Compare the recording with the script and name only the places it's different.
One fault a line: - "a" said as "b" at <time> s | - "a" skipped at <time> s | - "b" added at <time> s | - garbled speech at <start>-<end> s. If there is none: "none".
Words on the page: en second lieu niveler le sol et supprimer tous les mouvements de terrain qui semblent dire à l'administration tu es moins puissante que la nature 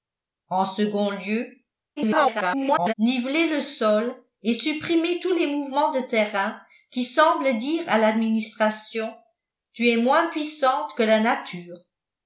- garbled speech at 2.0-2.9 s